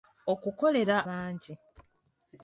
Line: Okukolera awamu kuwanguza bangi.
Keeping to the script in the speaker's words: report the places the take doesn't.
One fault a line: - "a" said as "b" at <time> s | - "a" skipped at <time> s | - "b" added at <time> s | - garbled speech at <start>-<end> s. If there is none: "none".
- "awamu kuwanguza" skipped at 1.0 s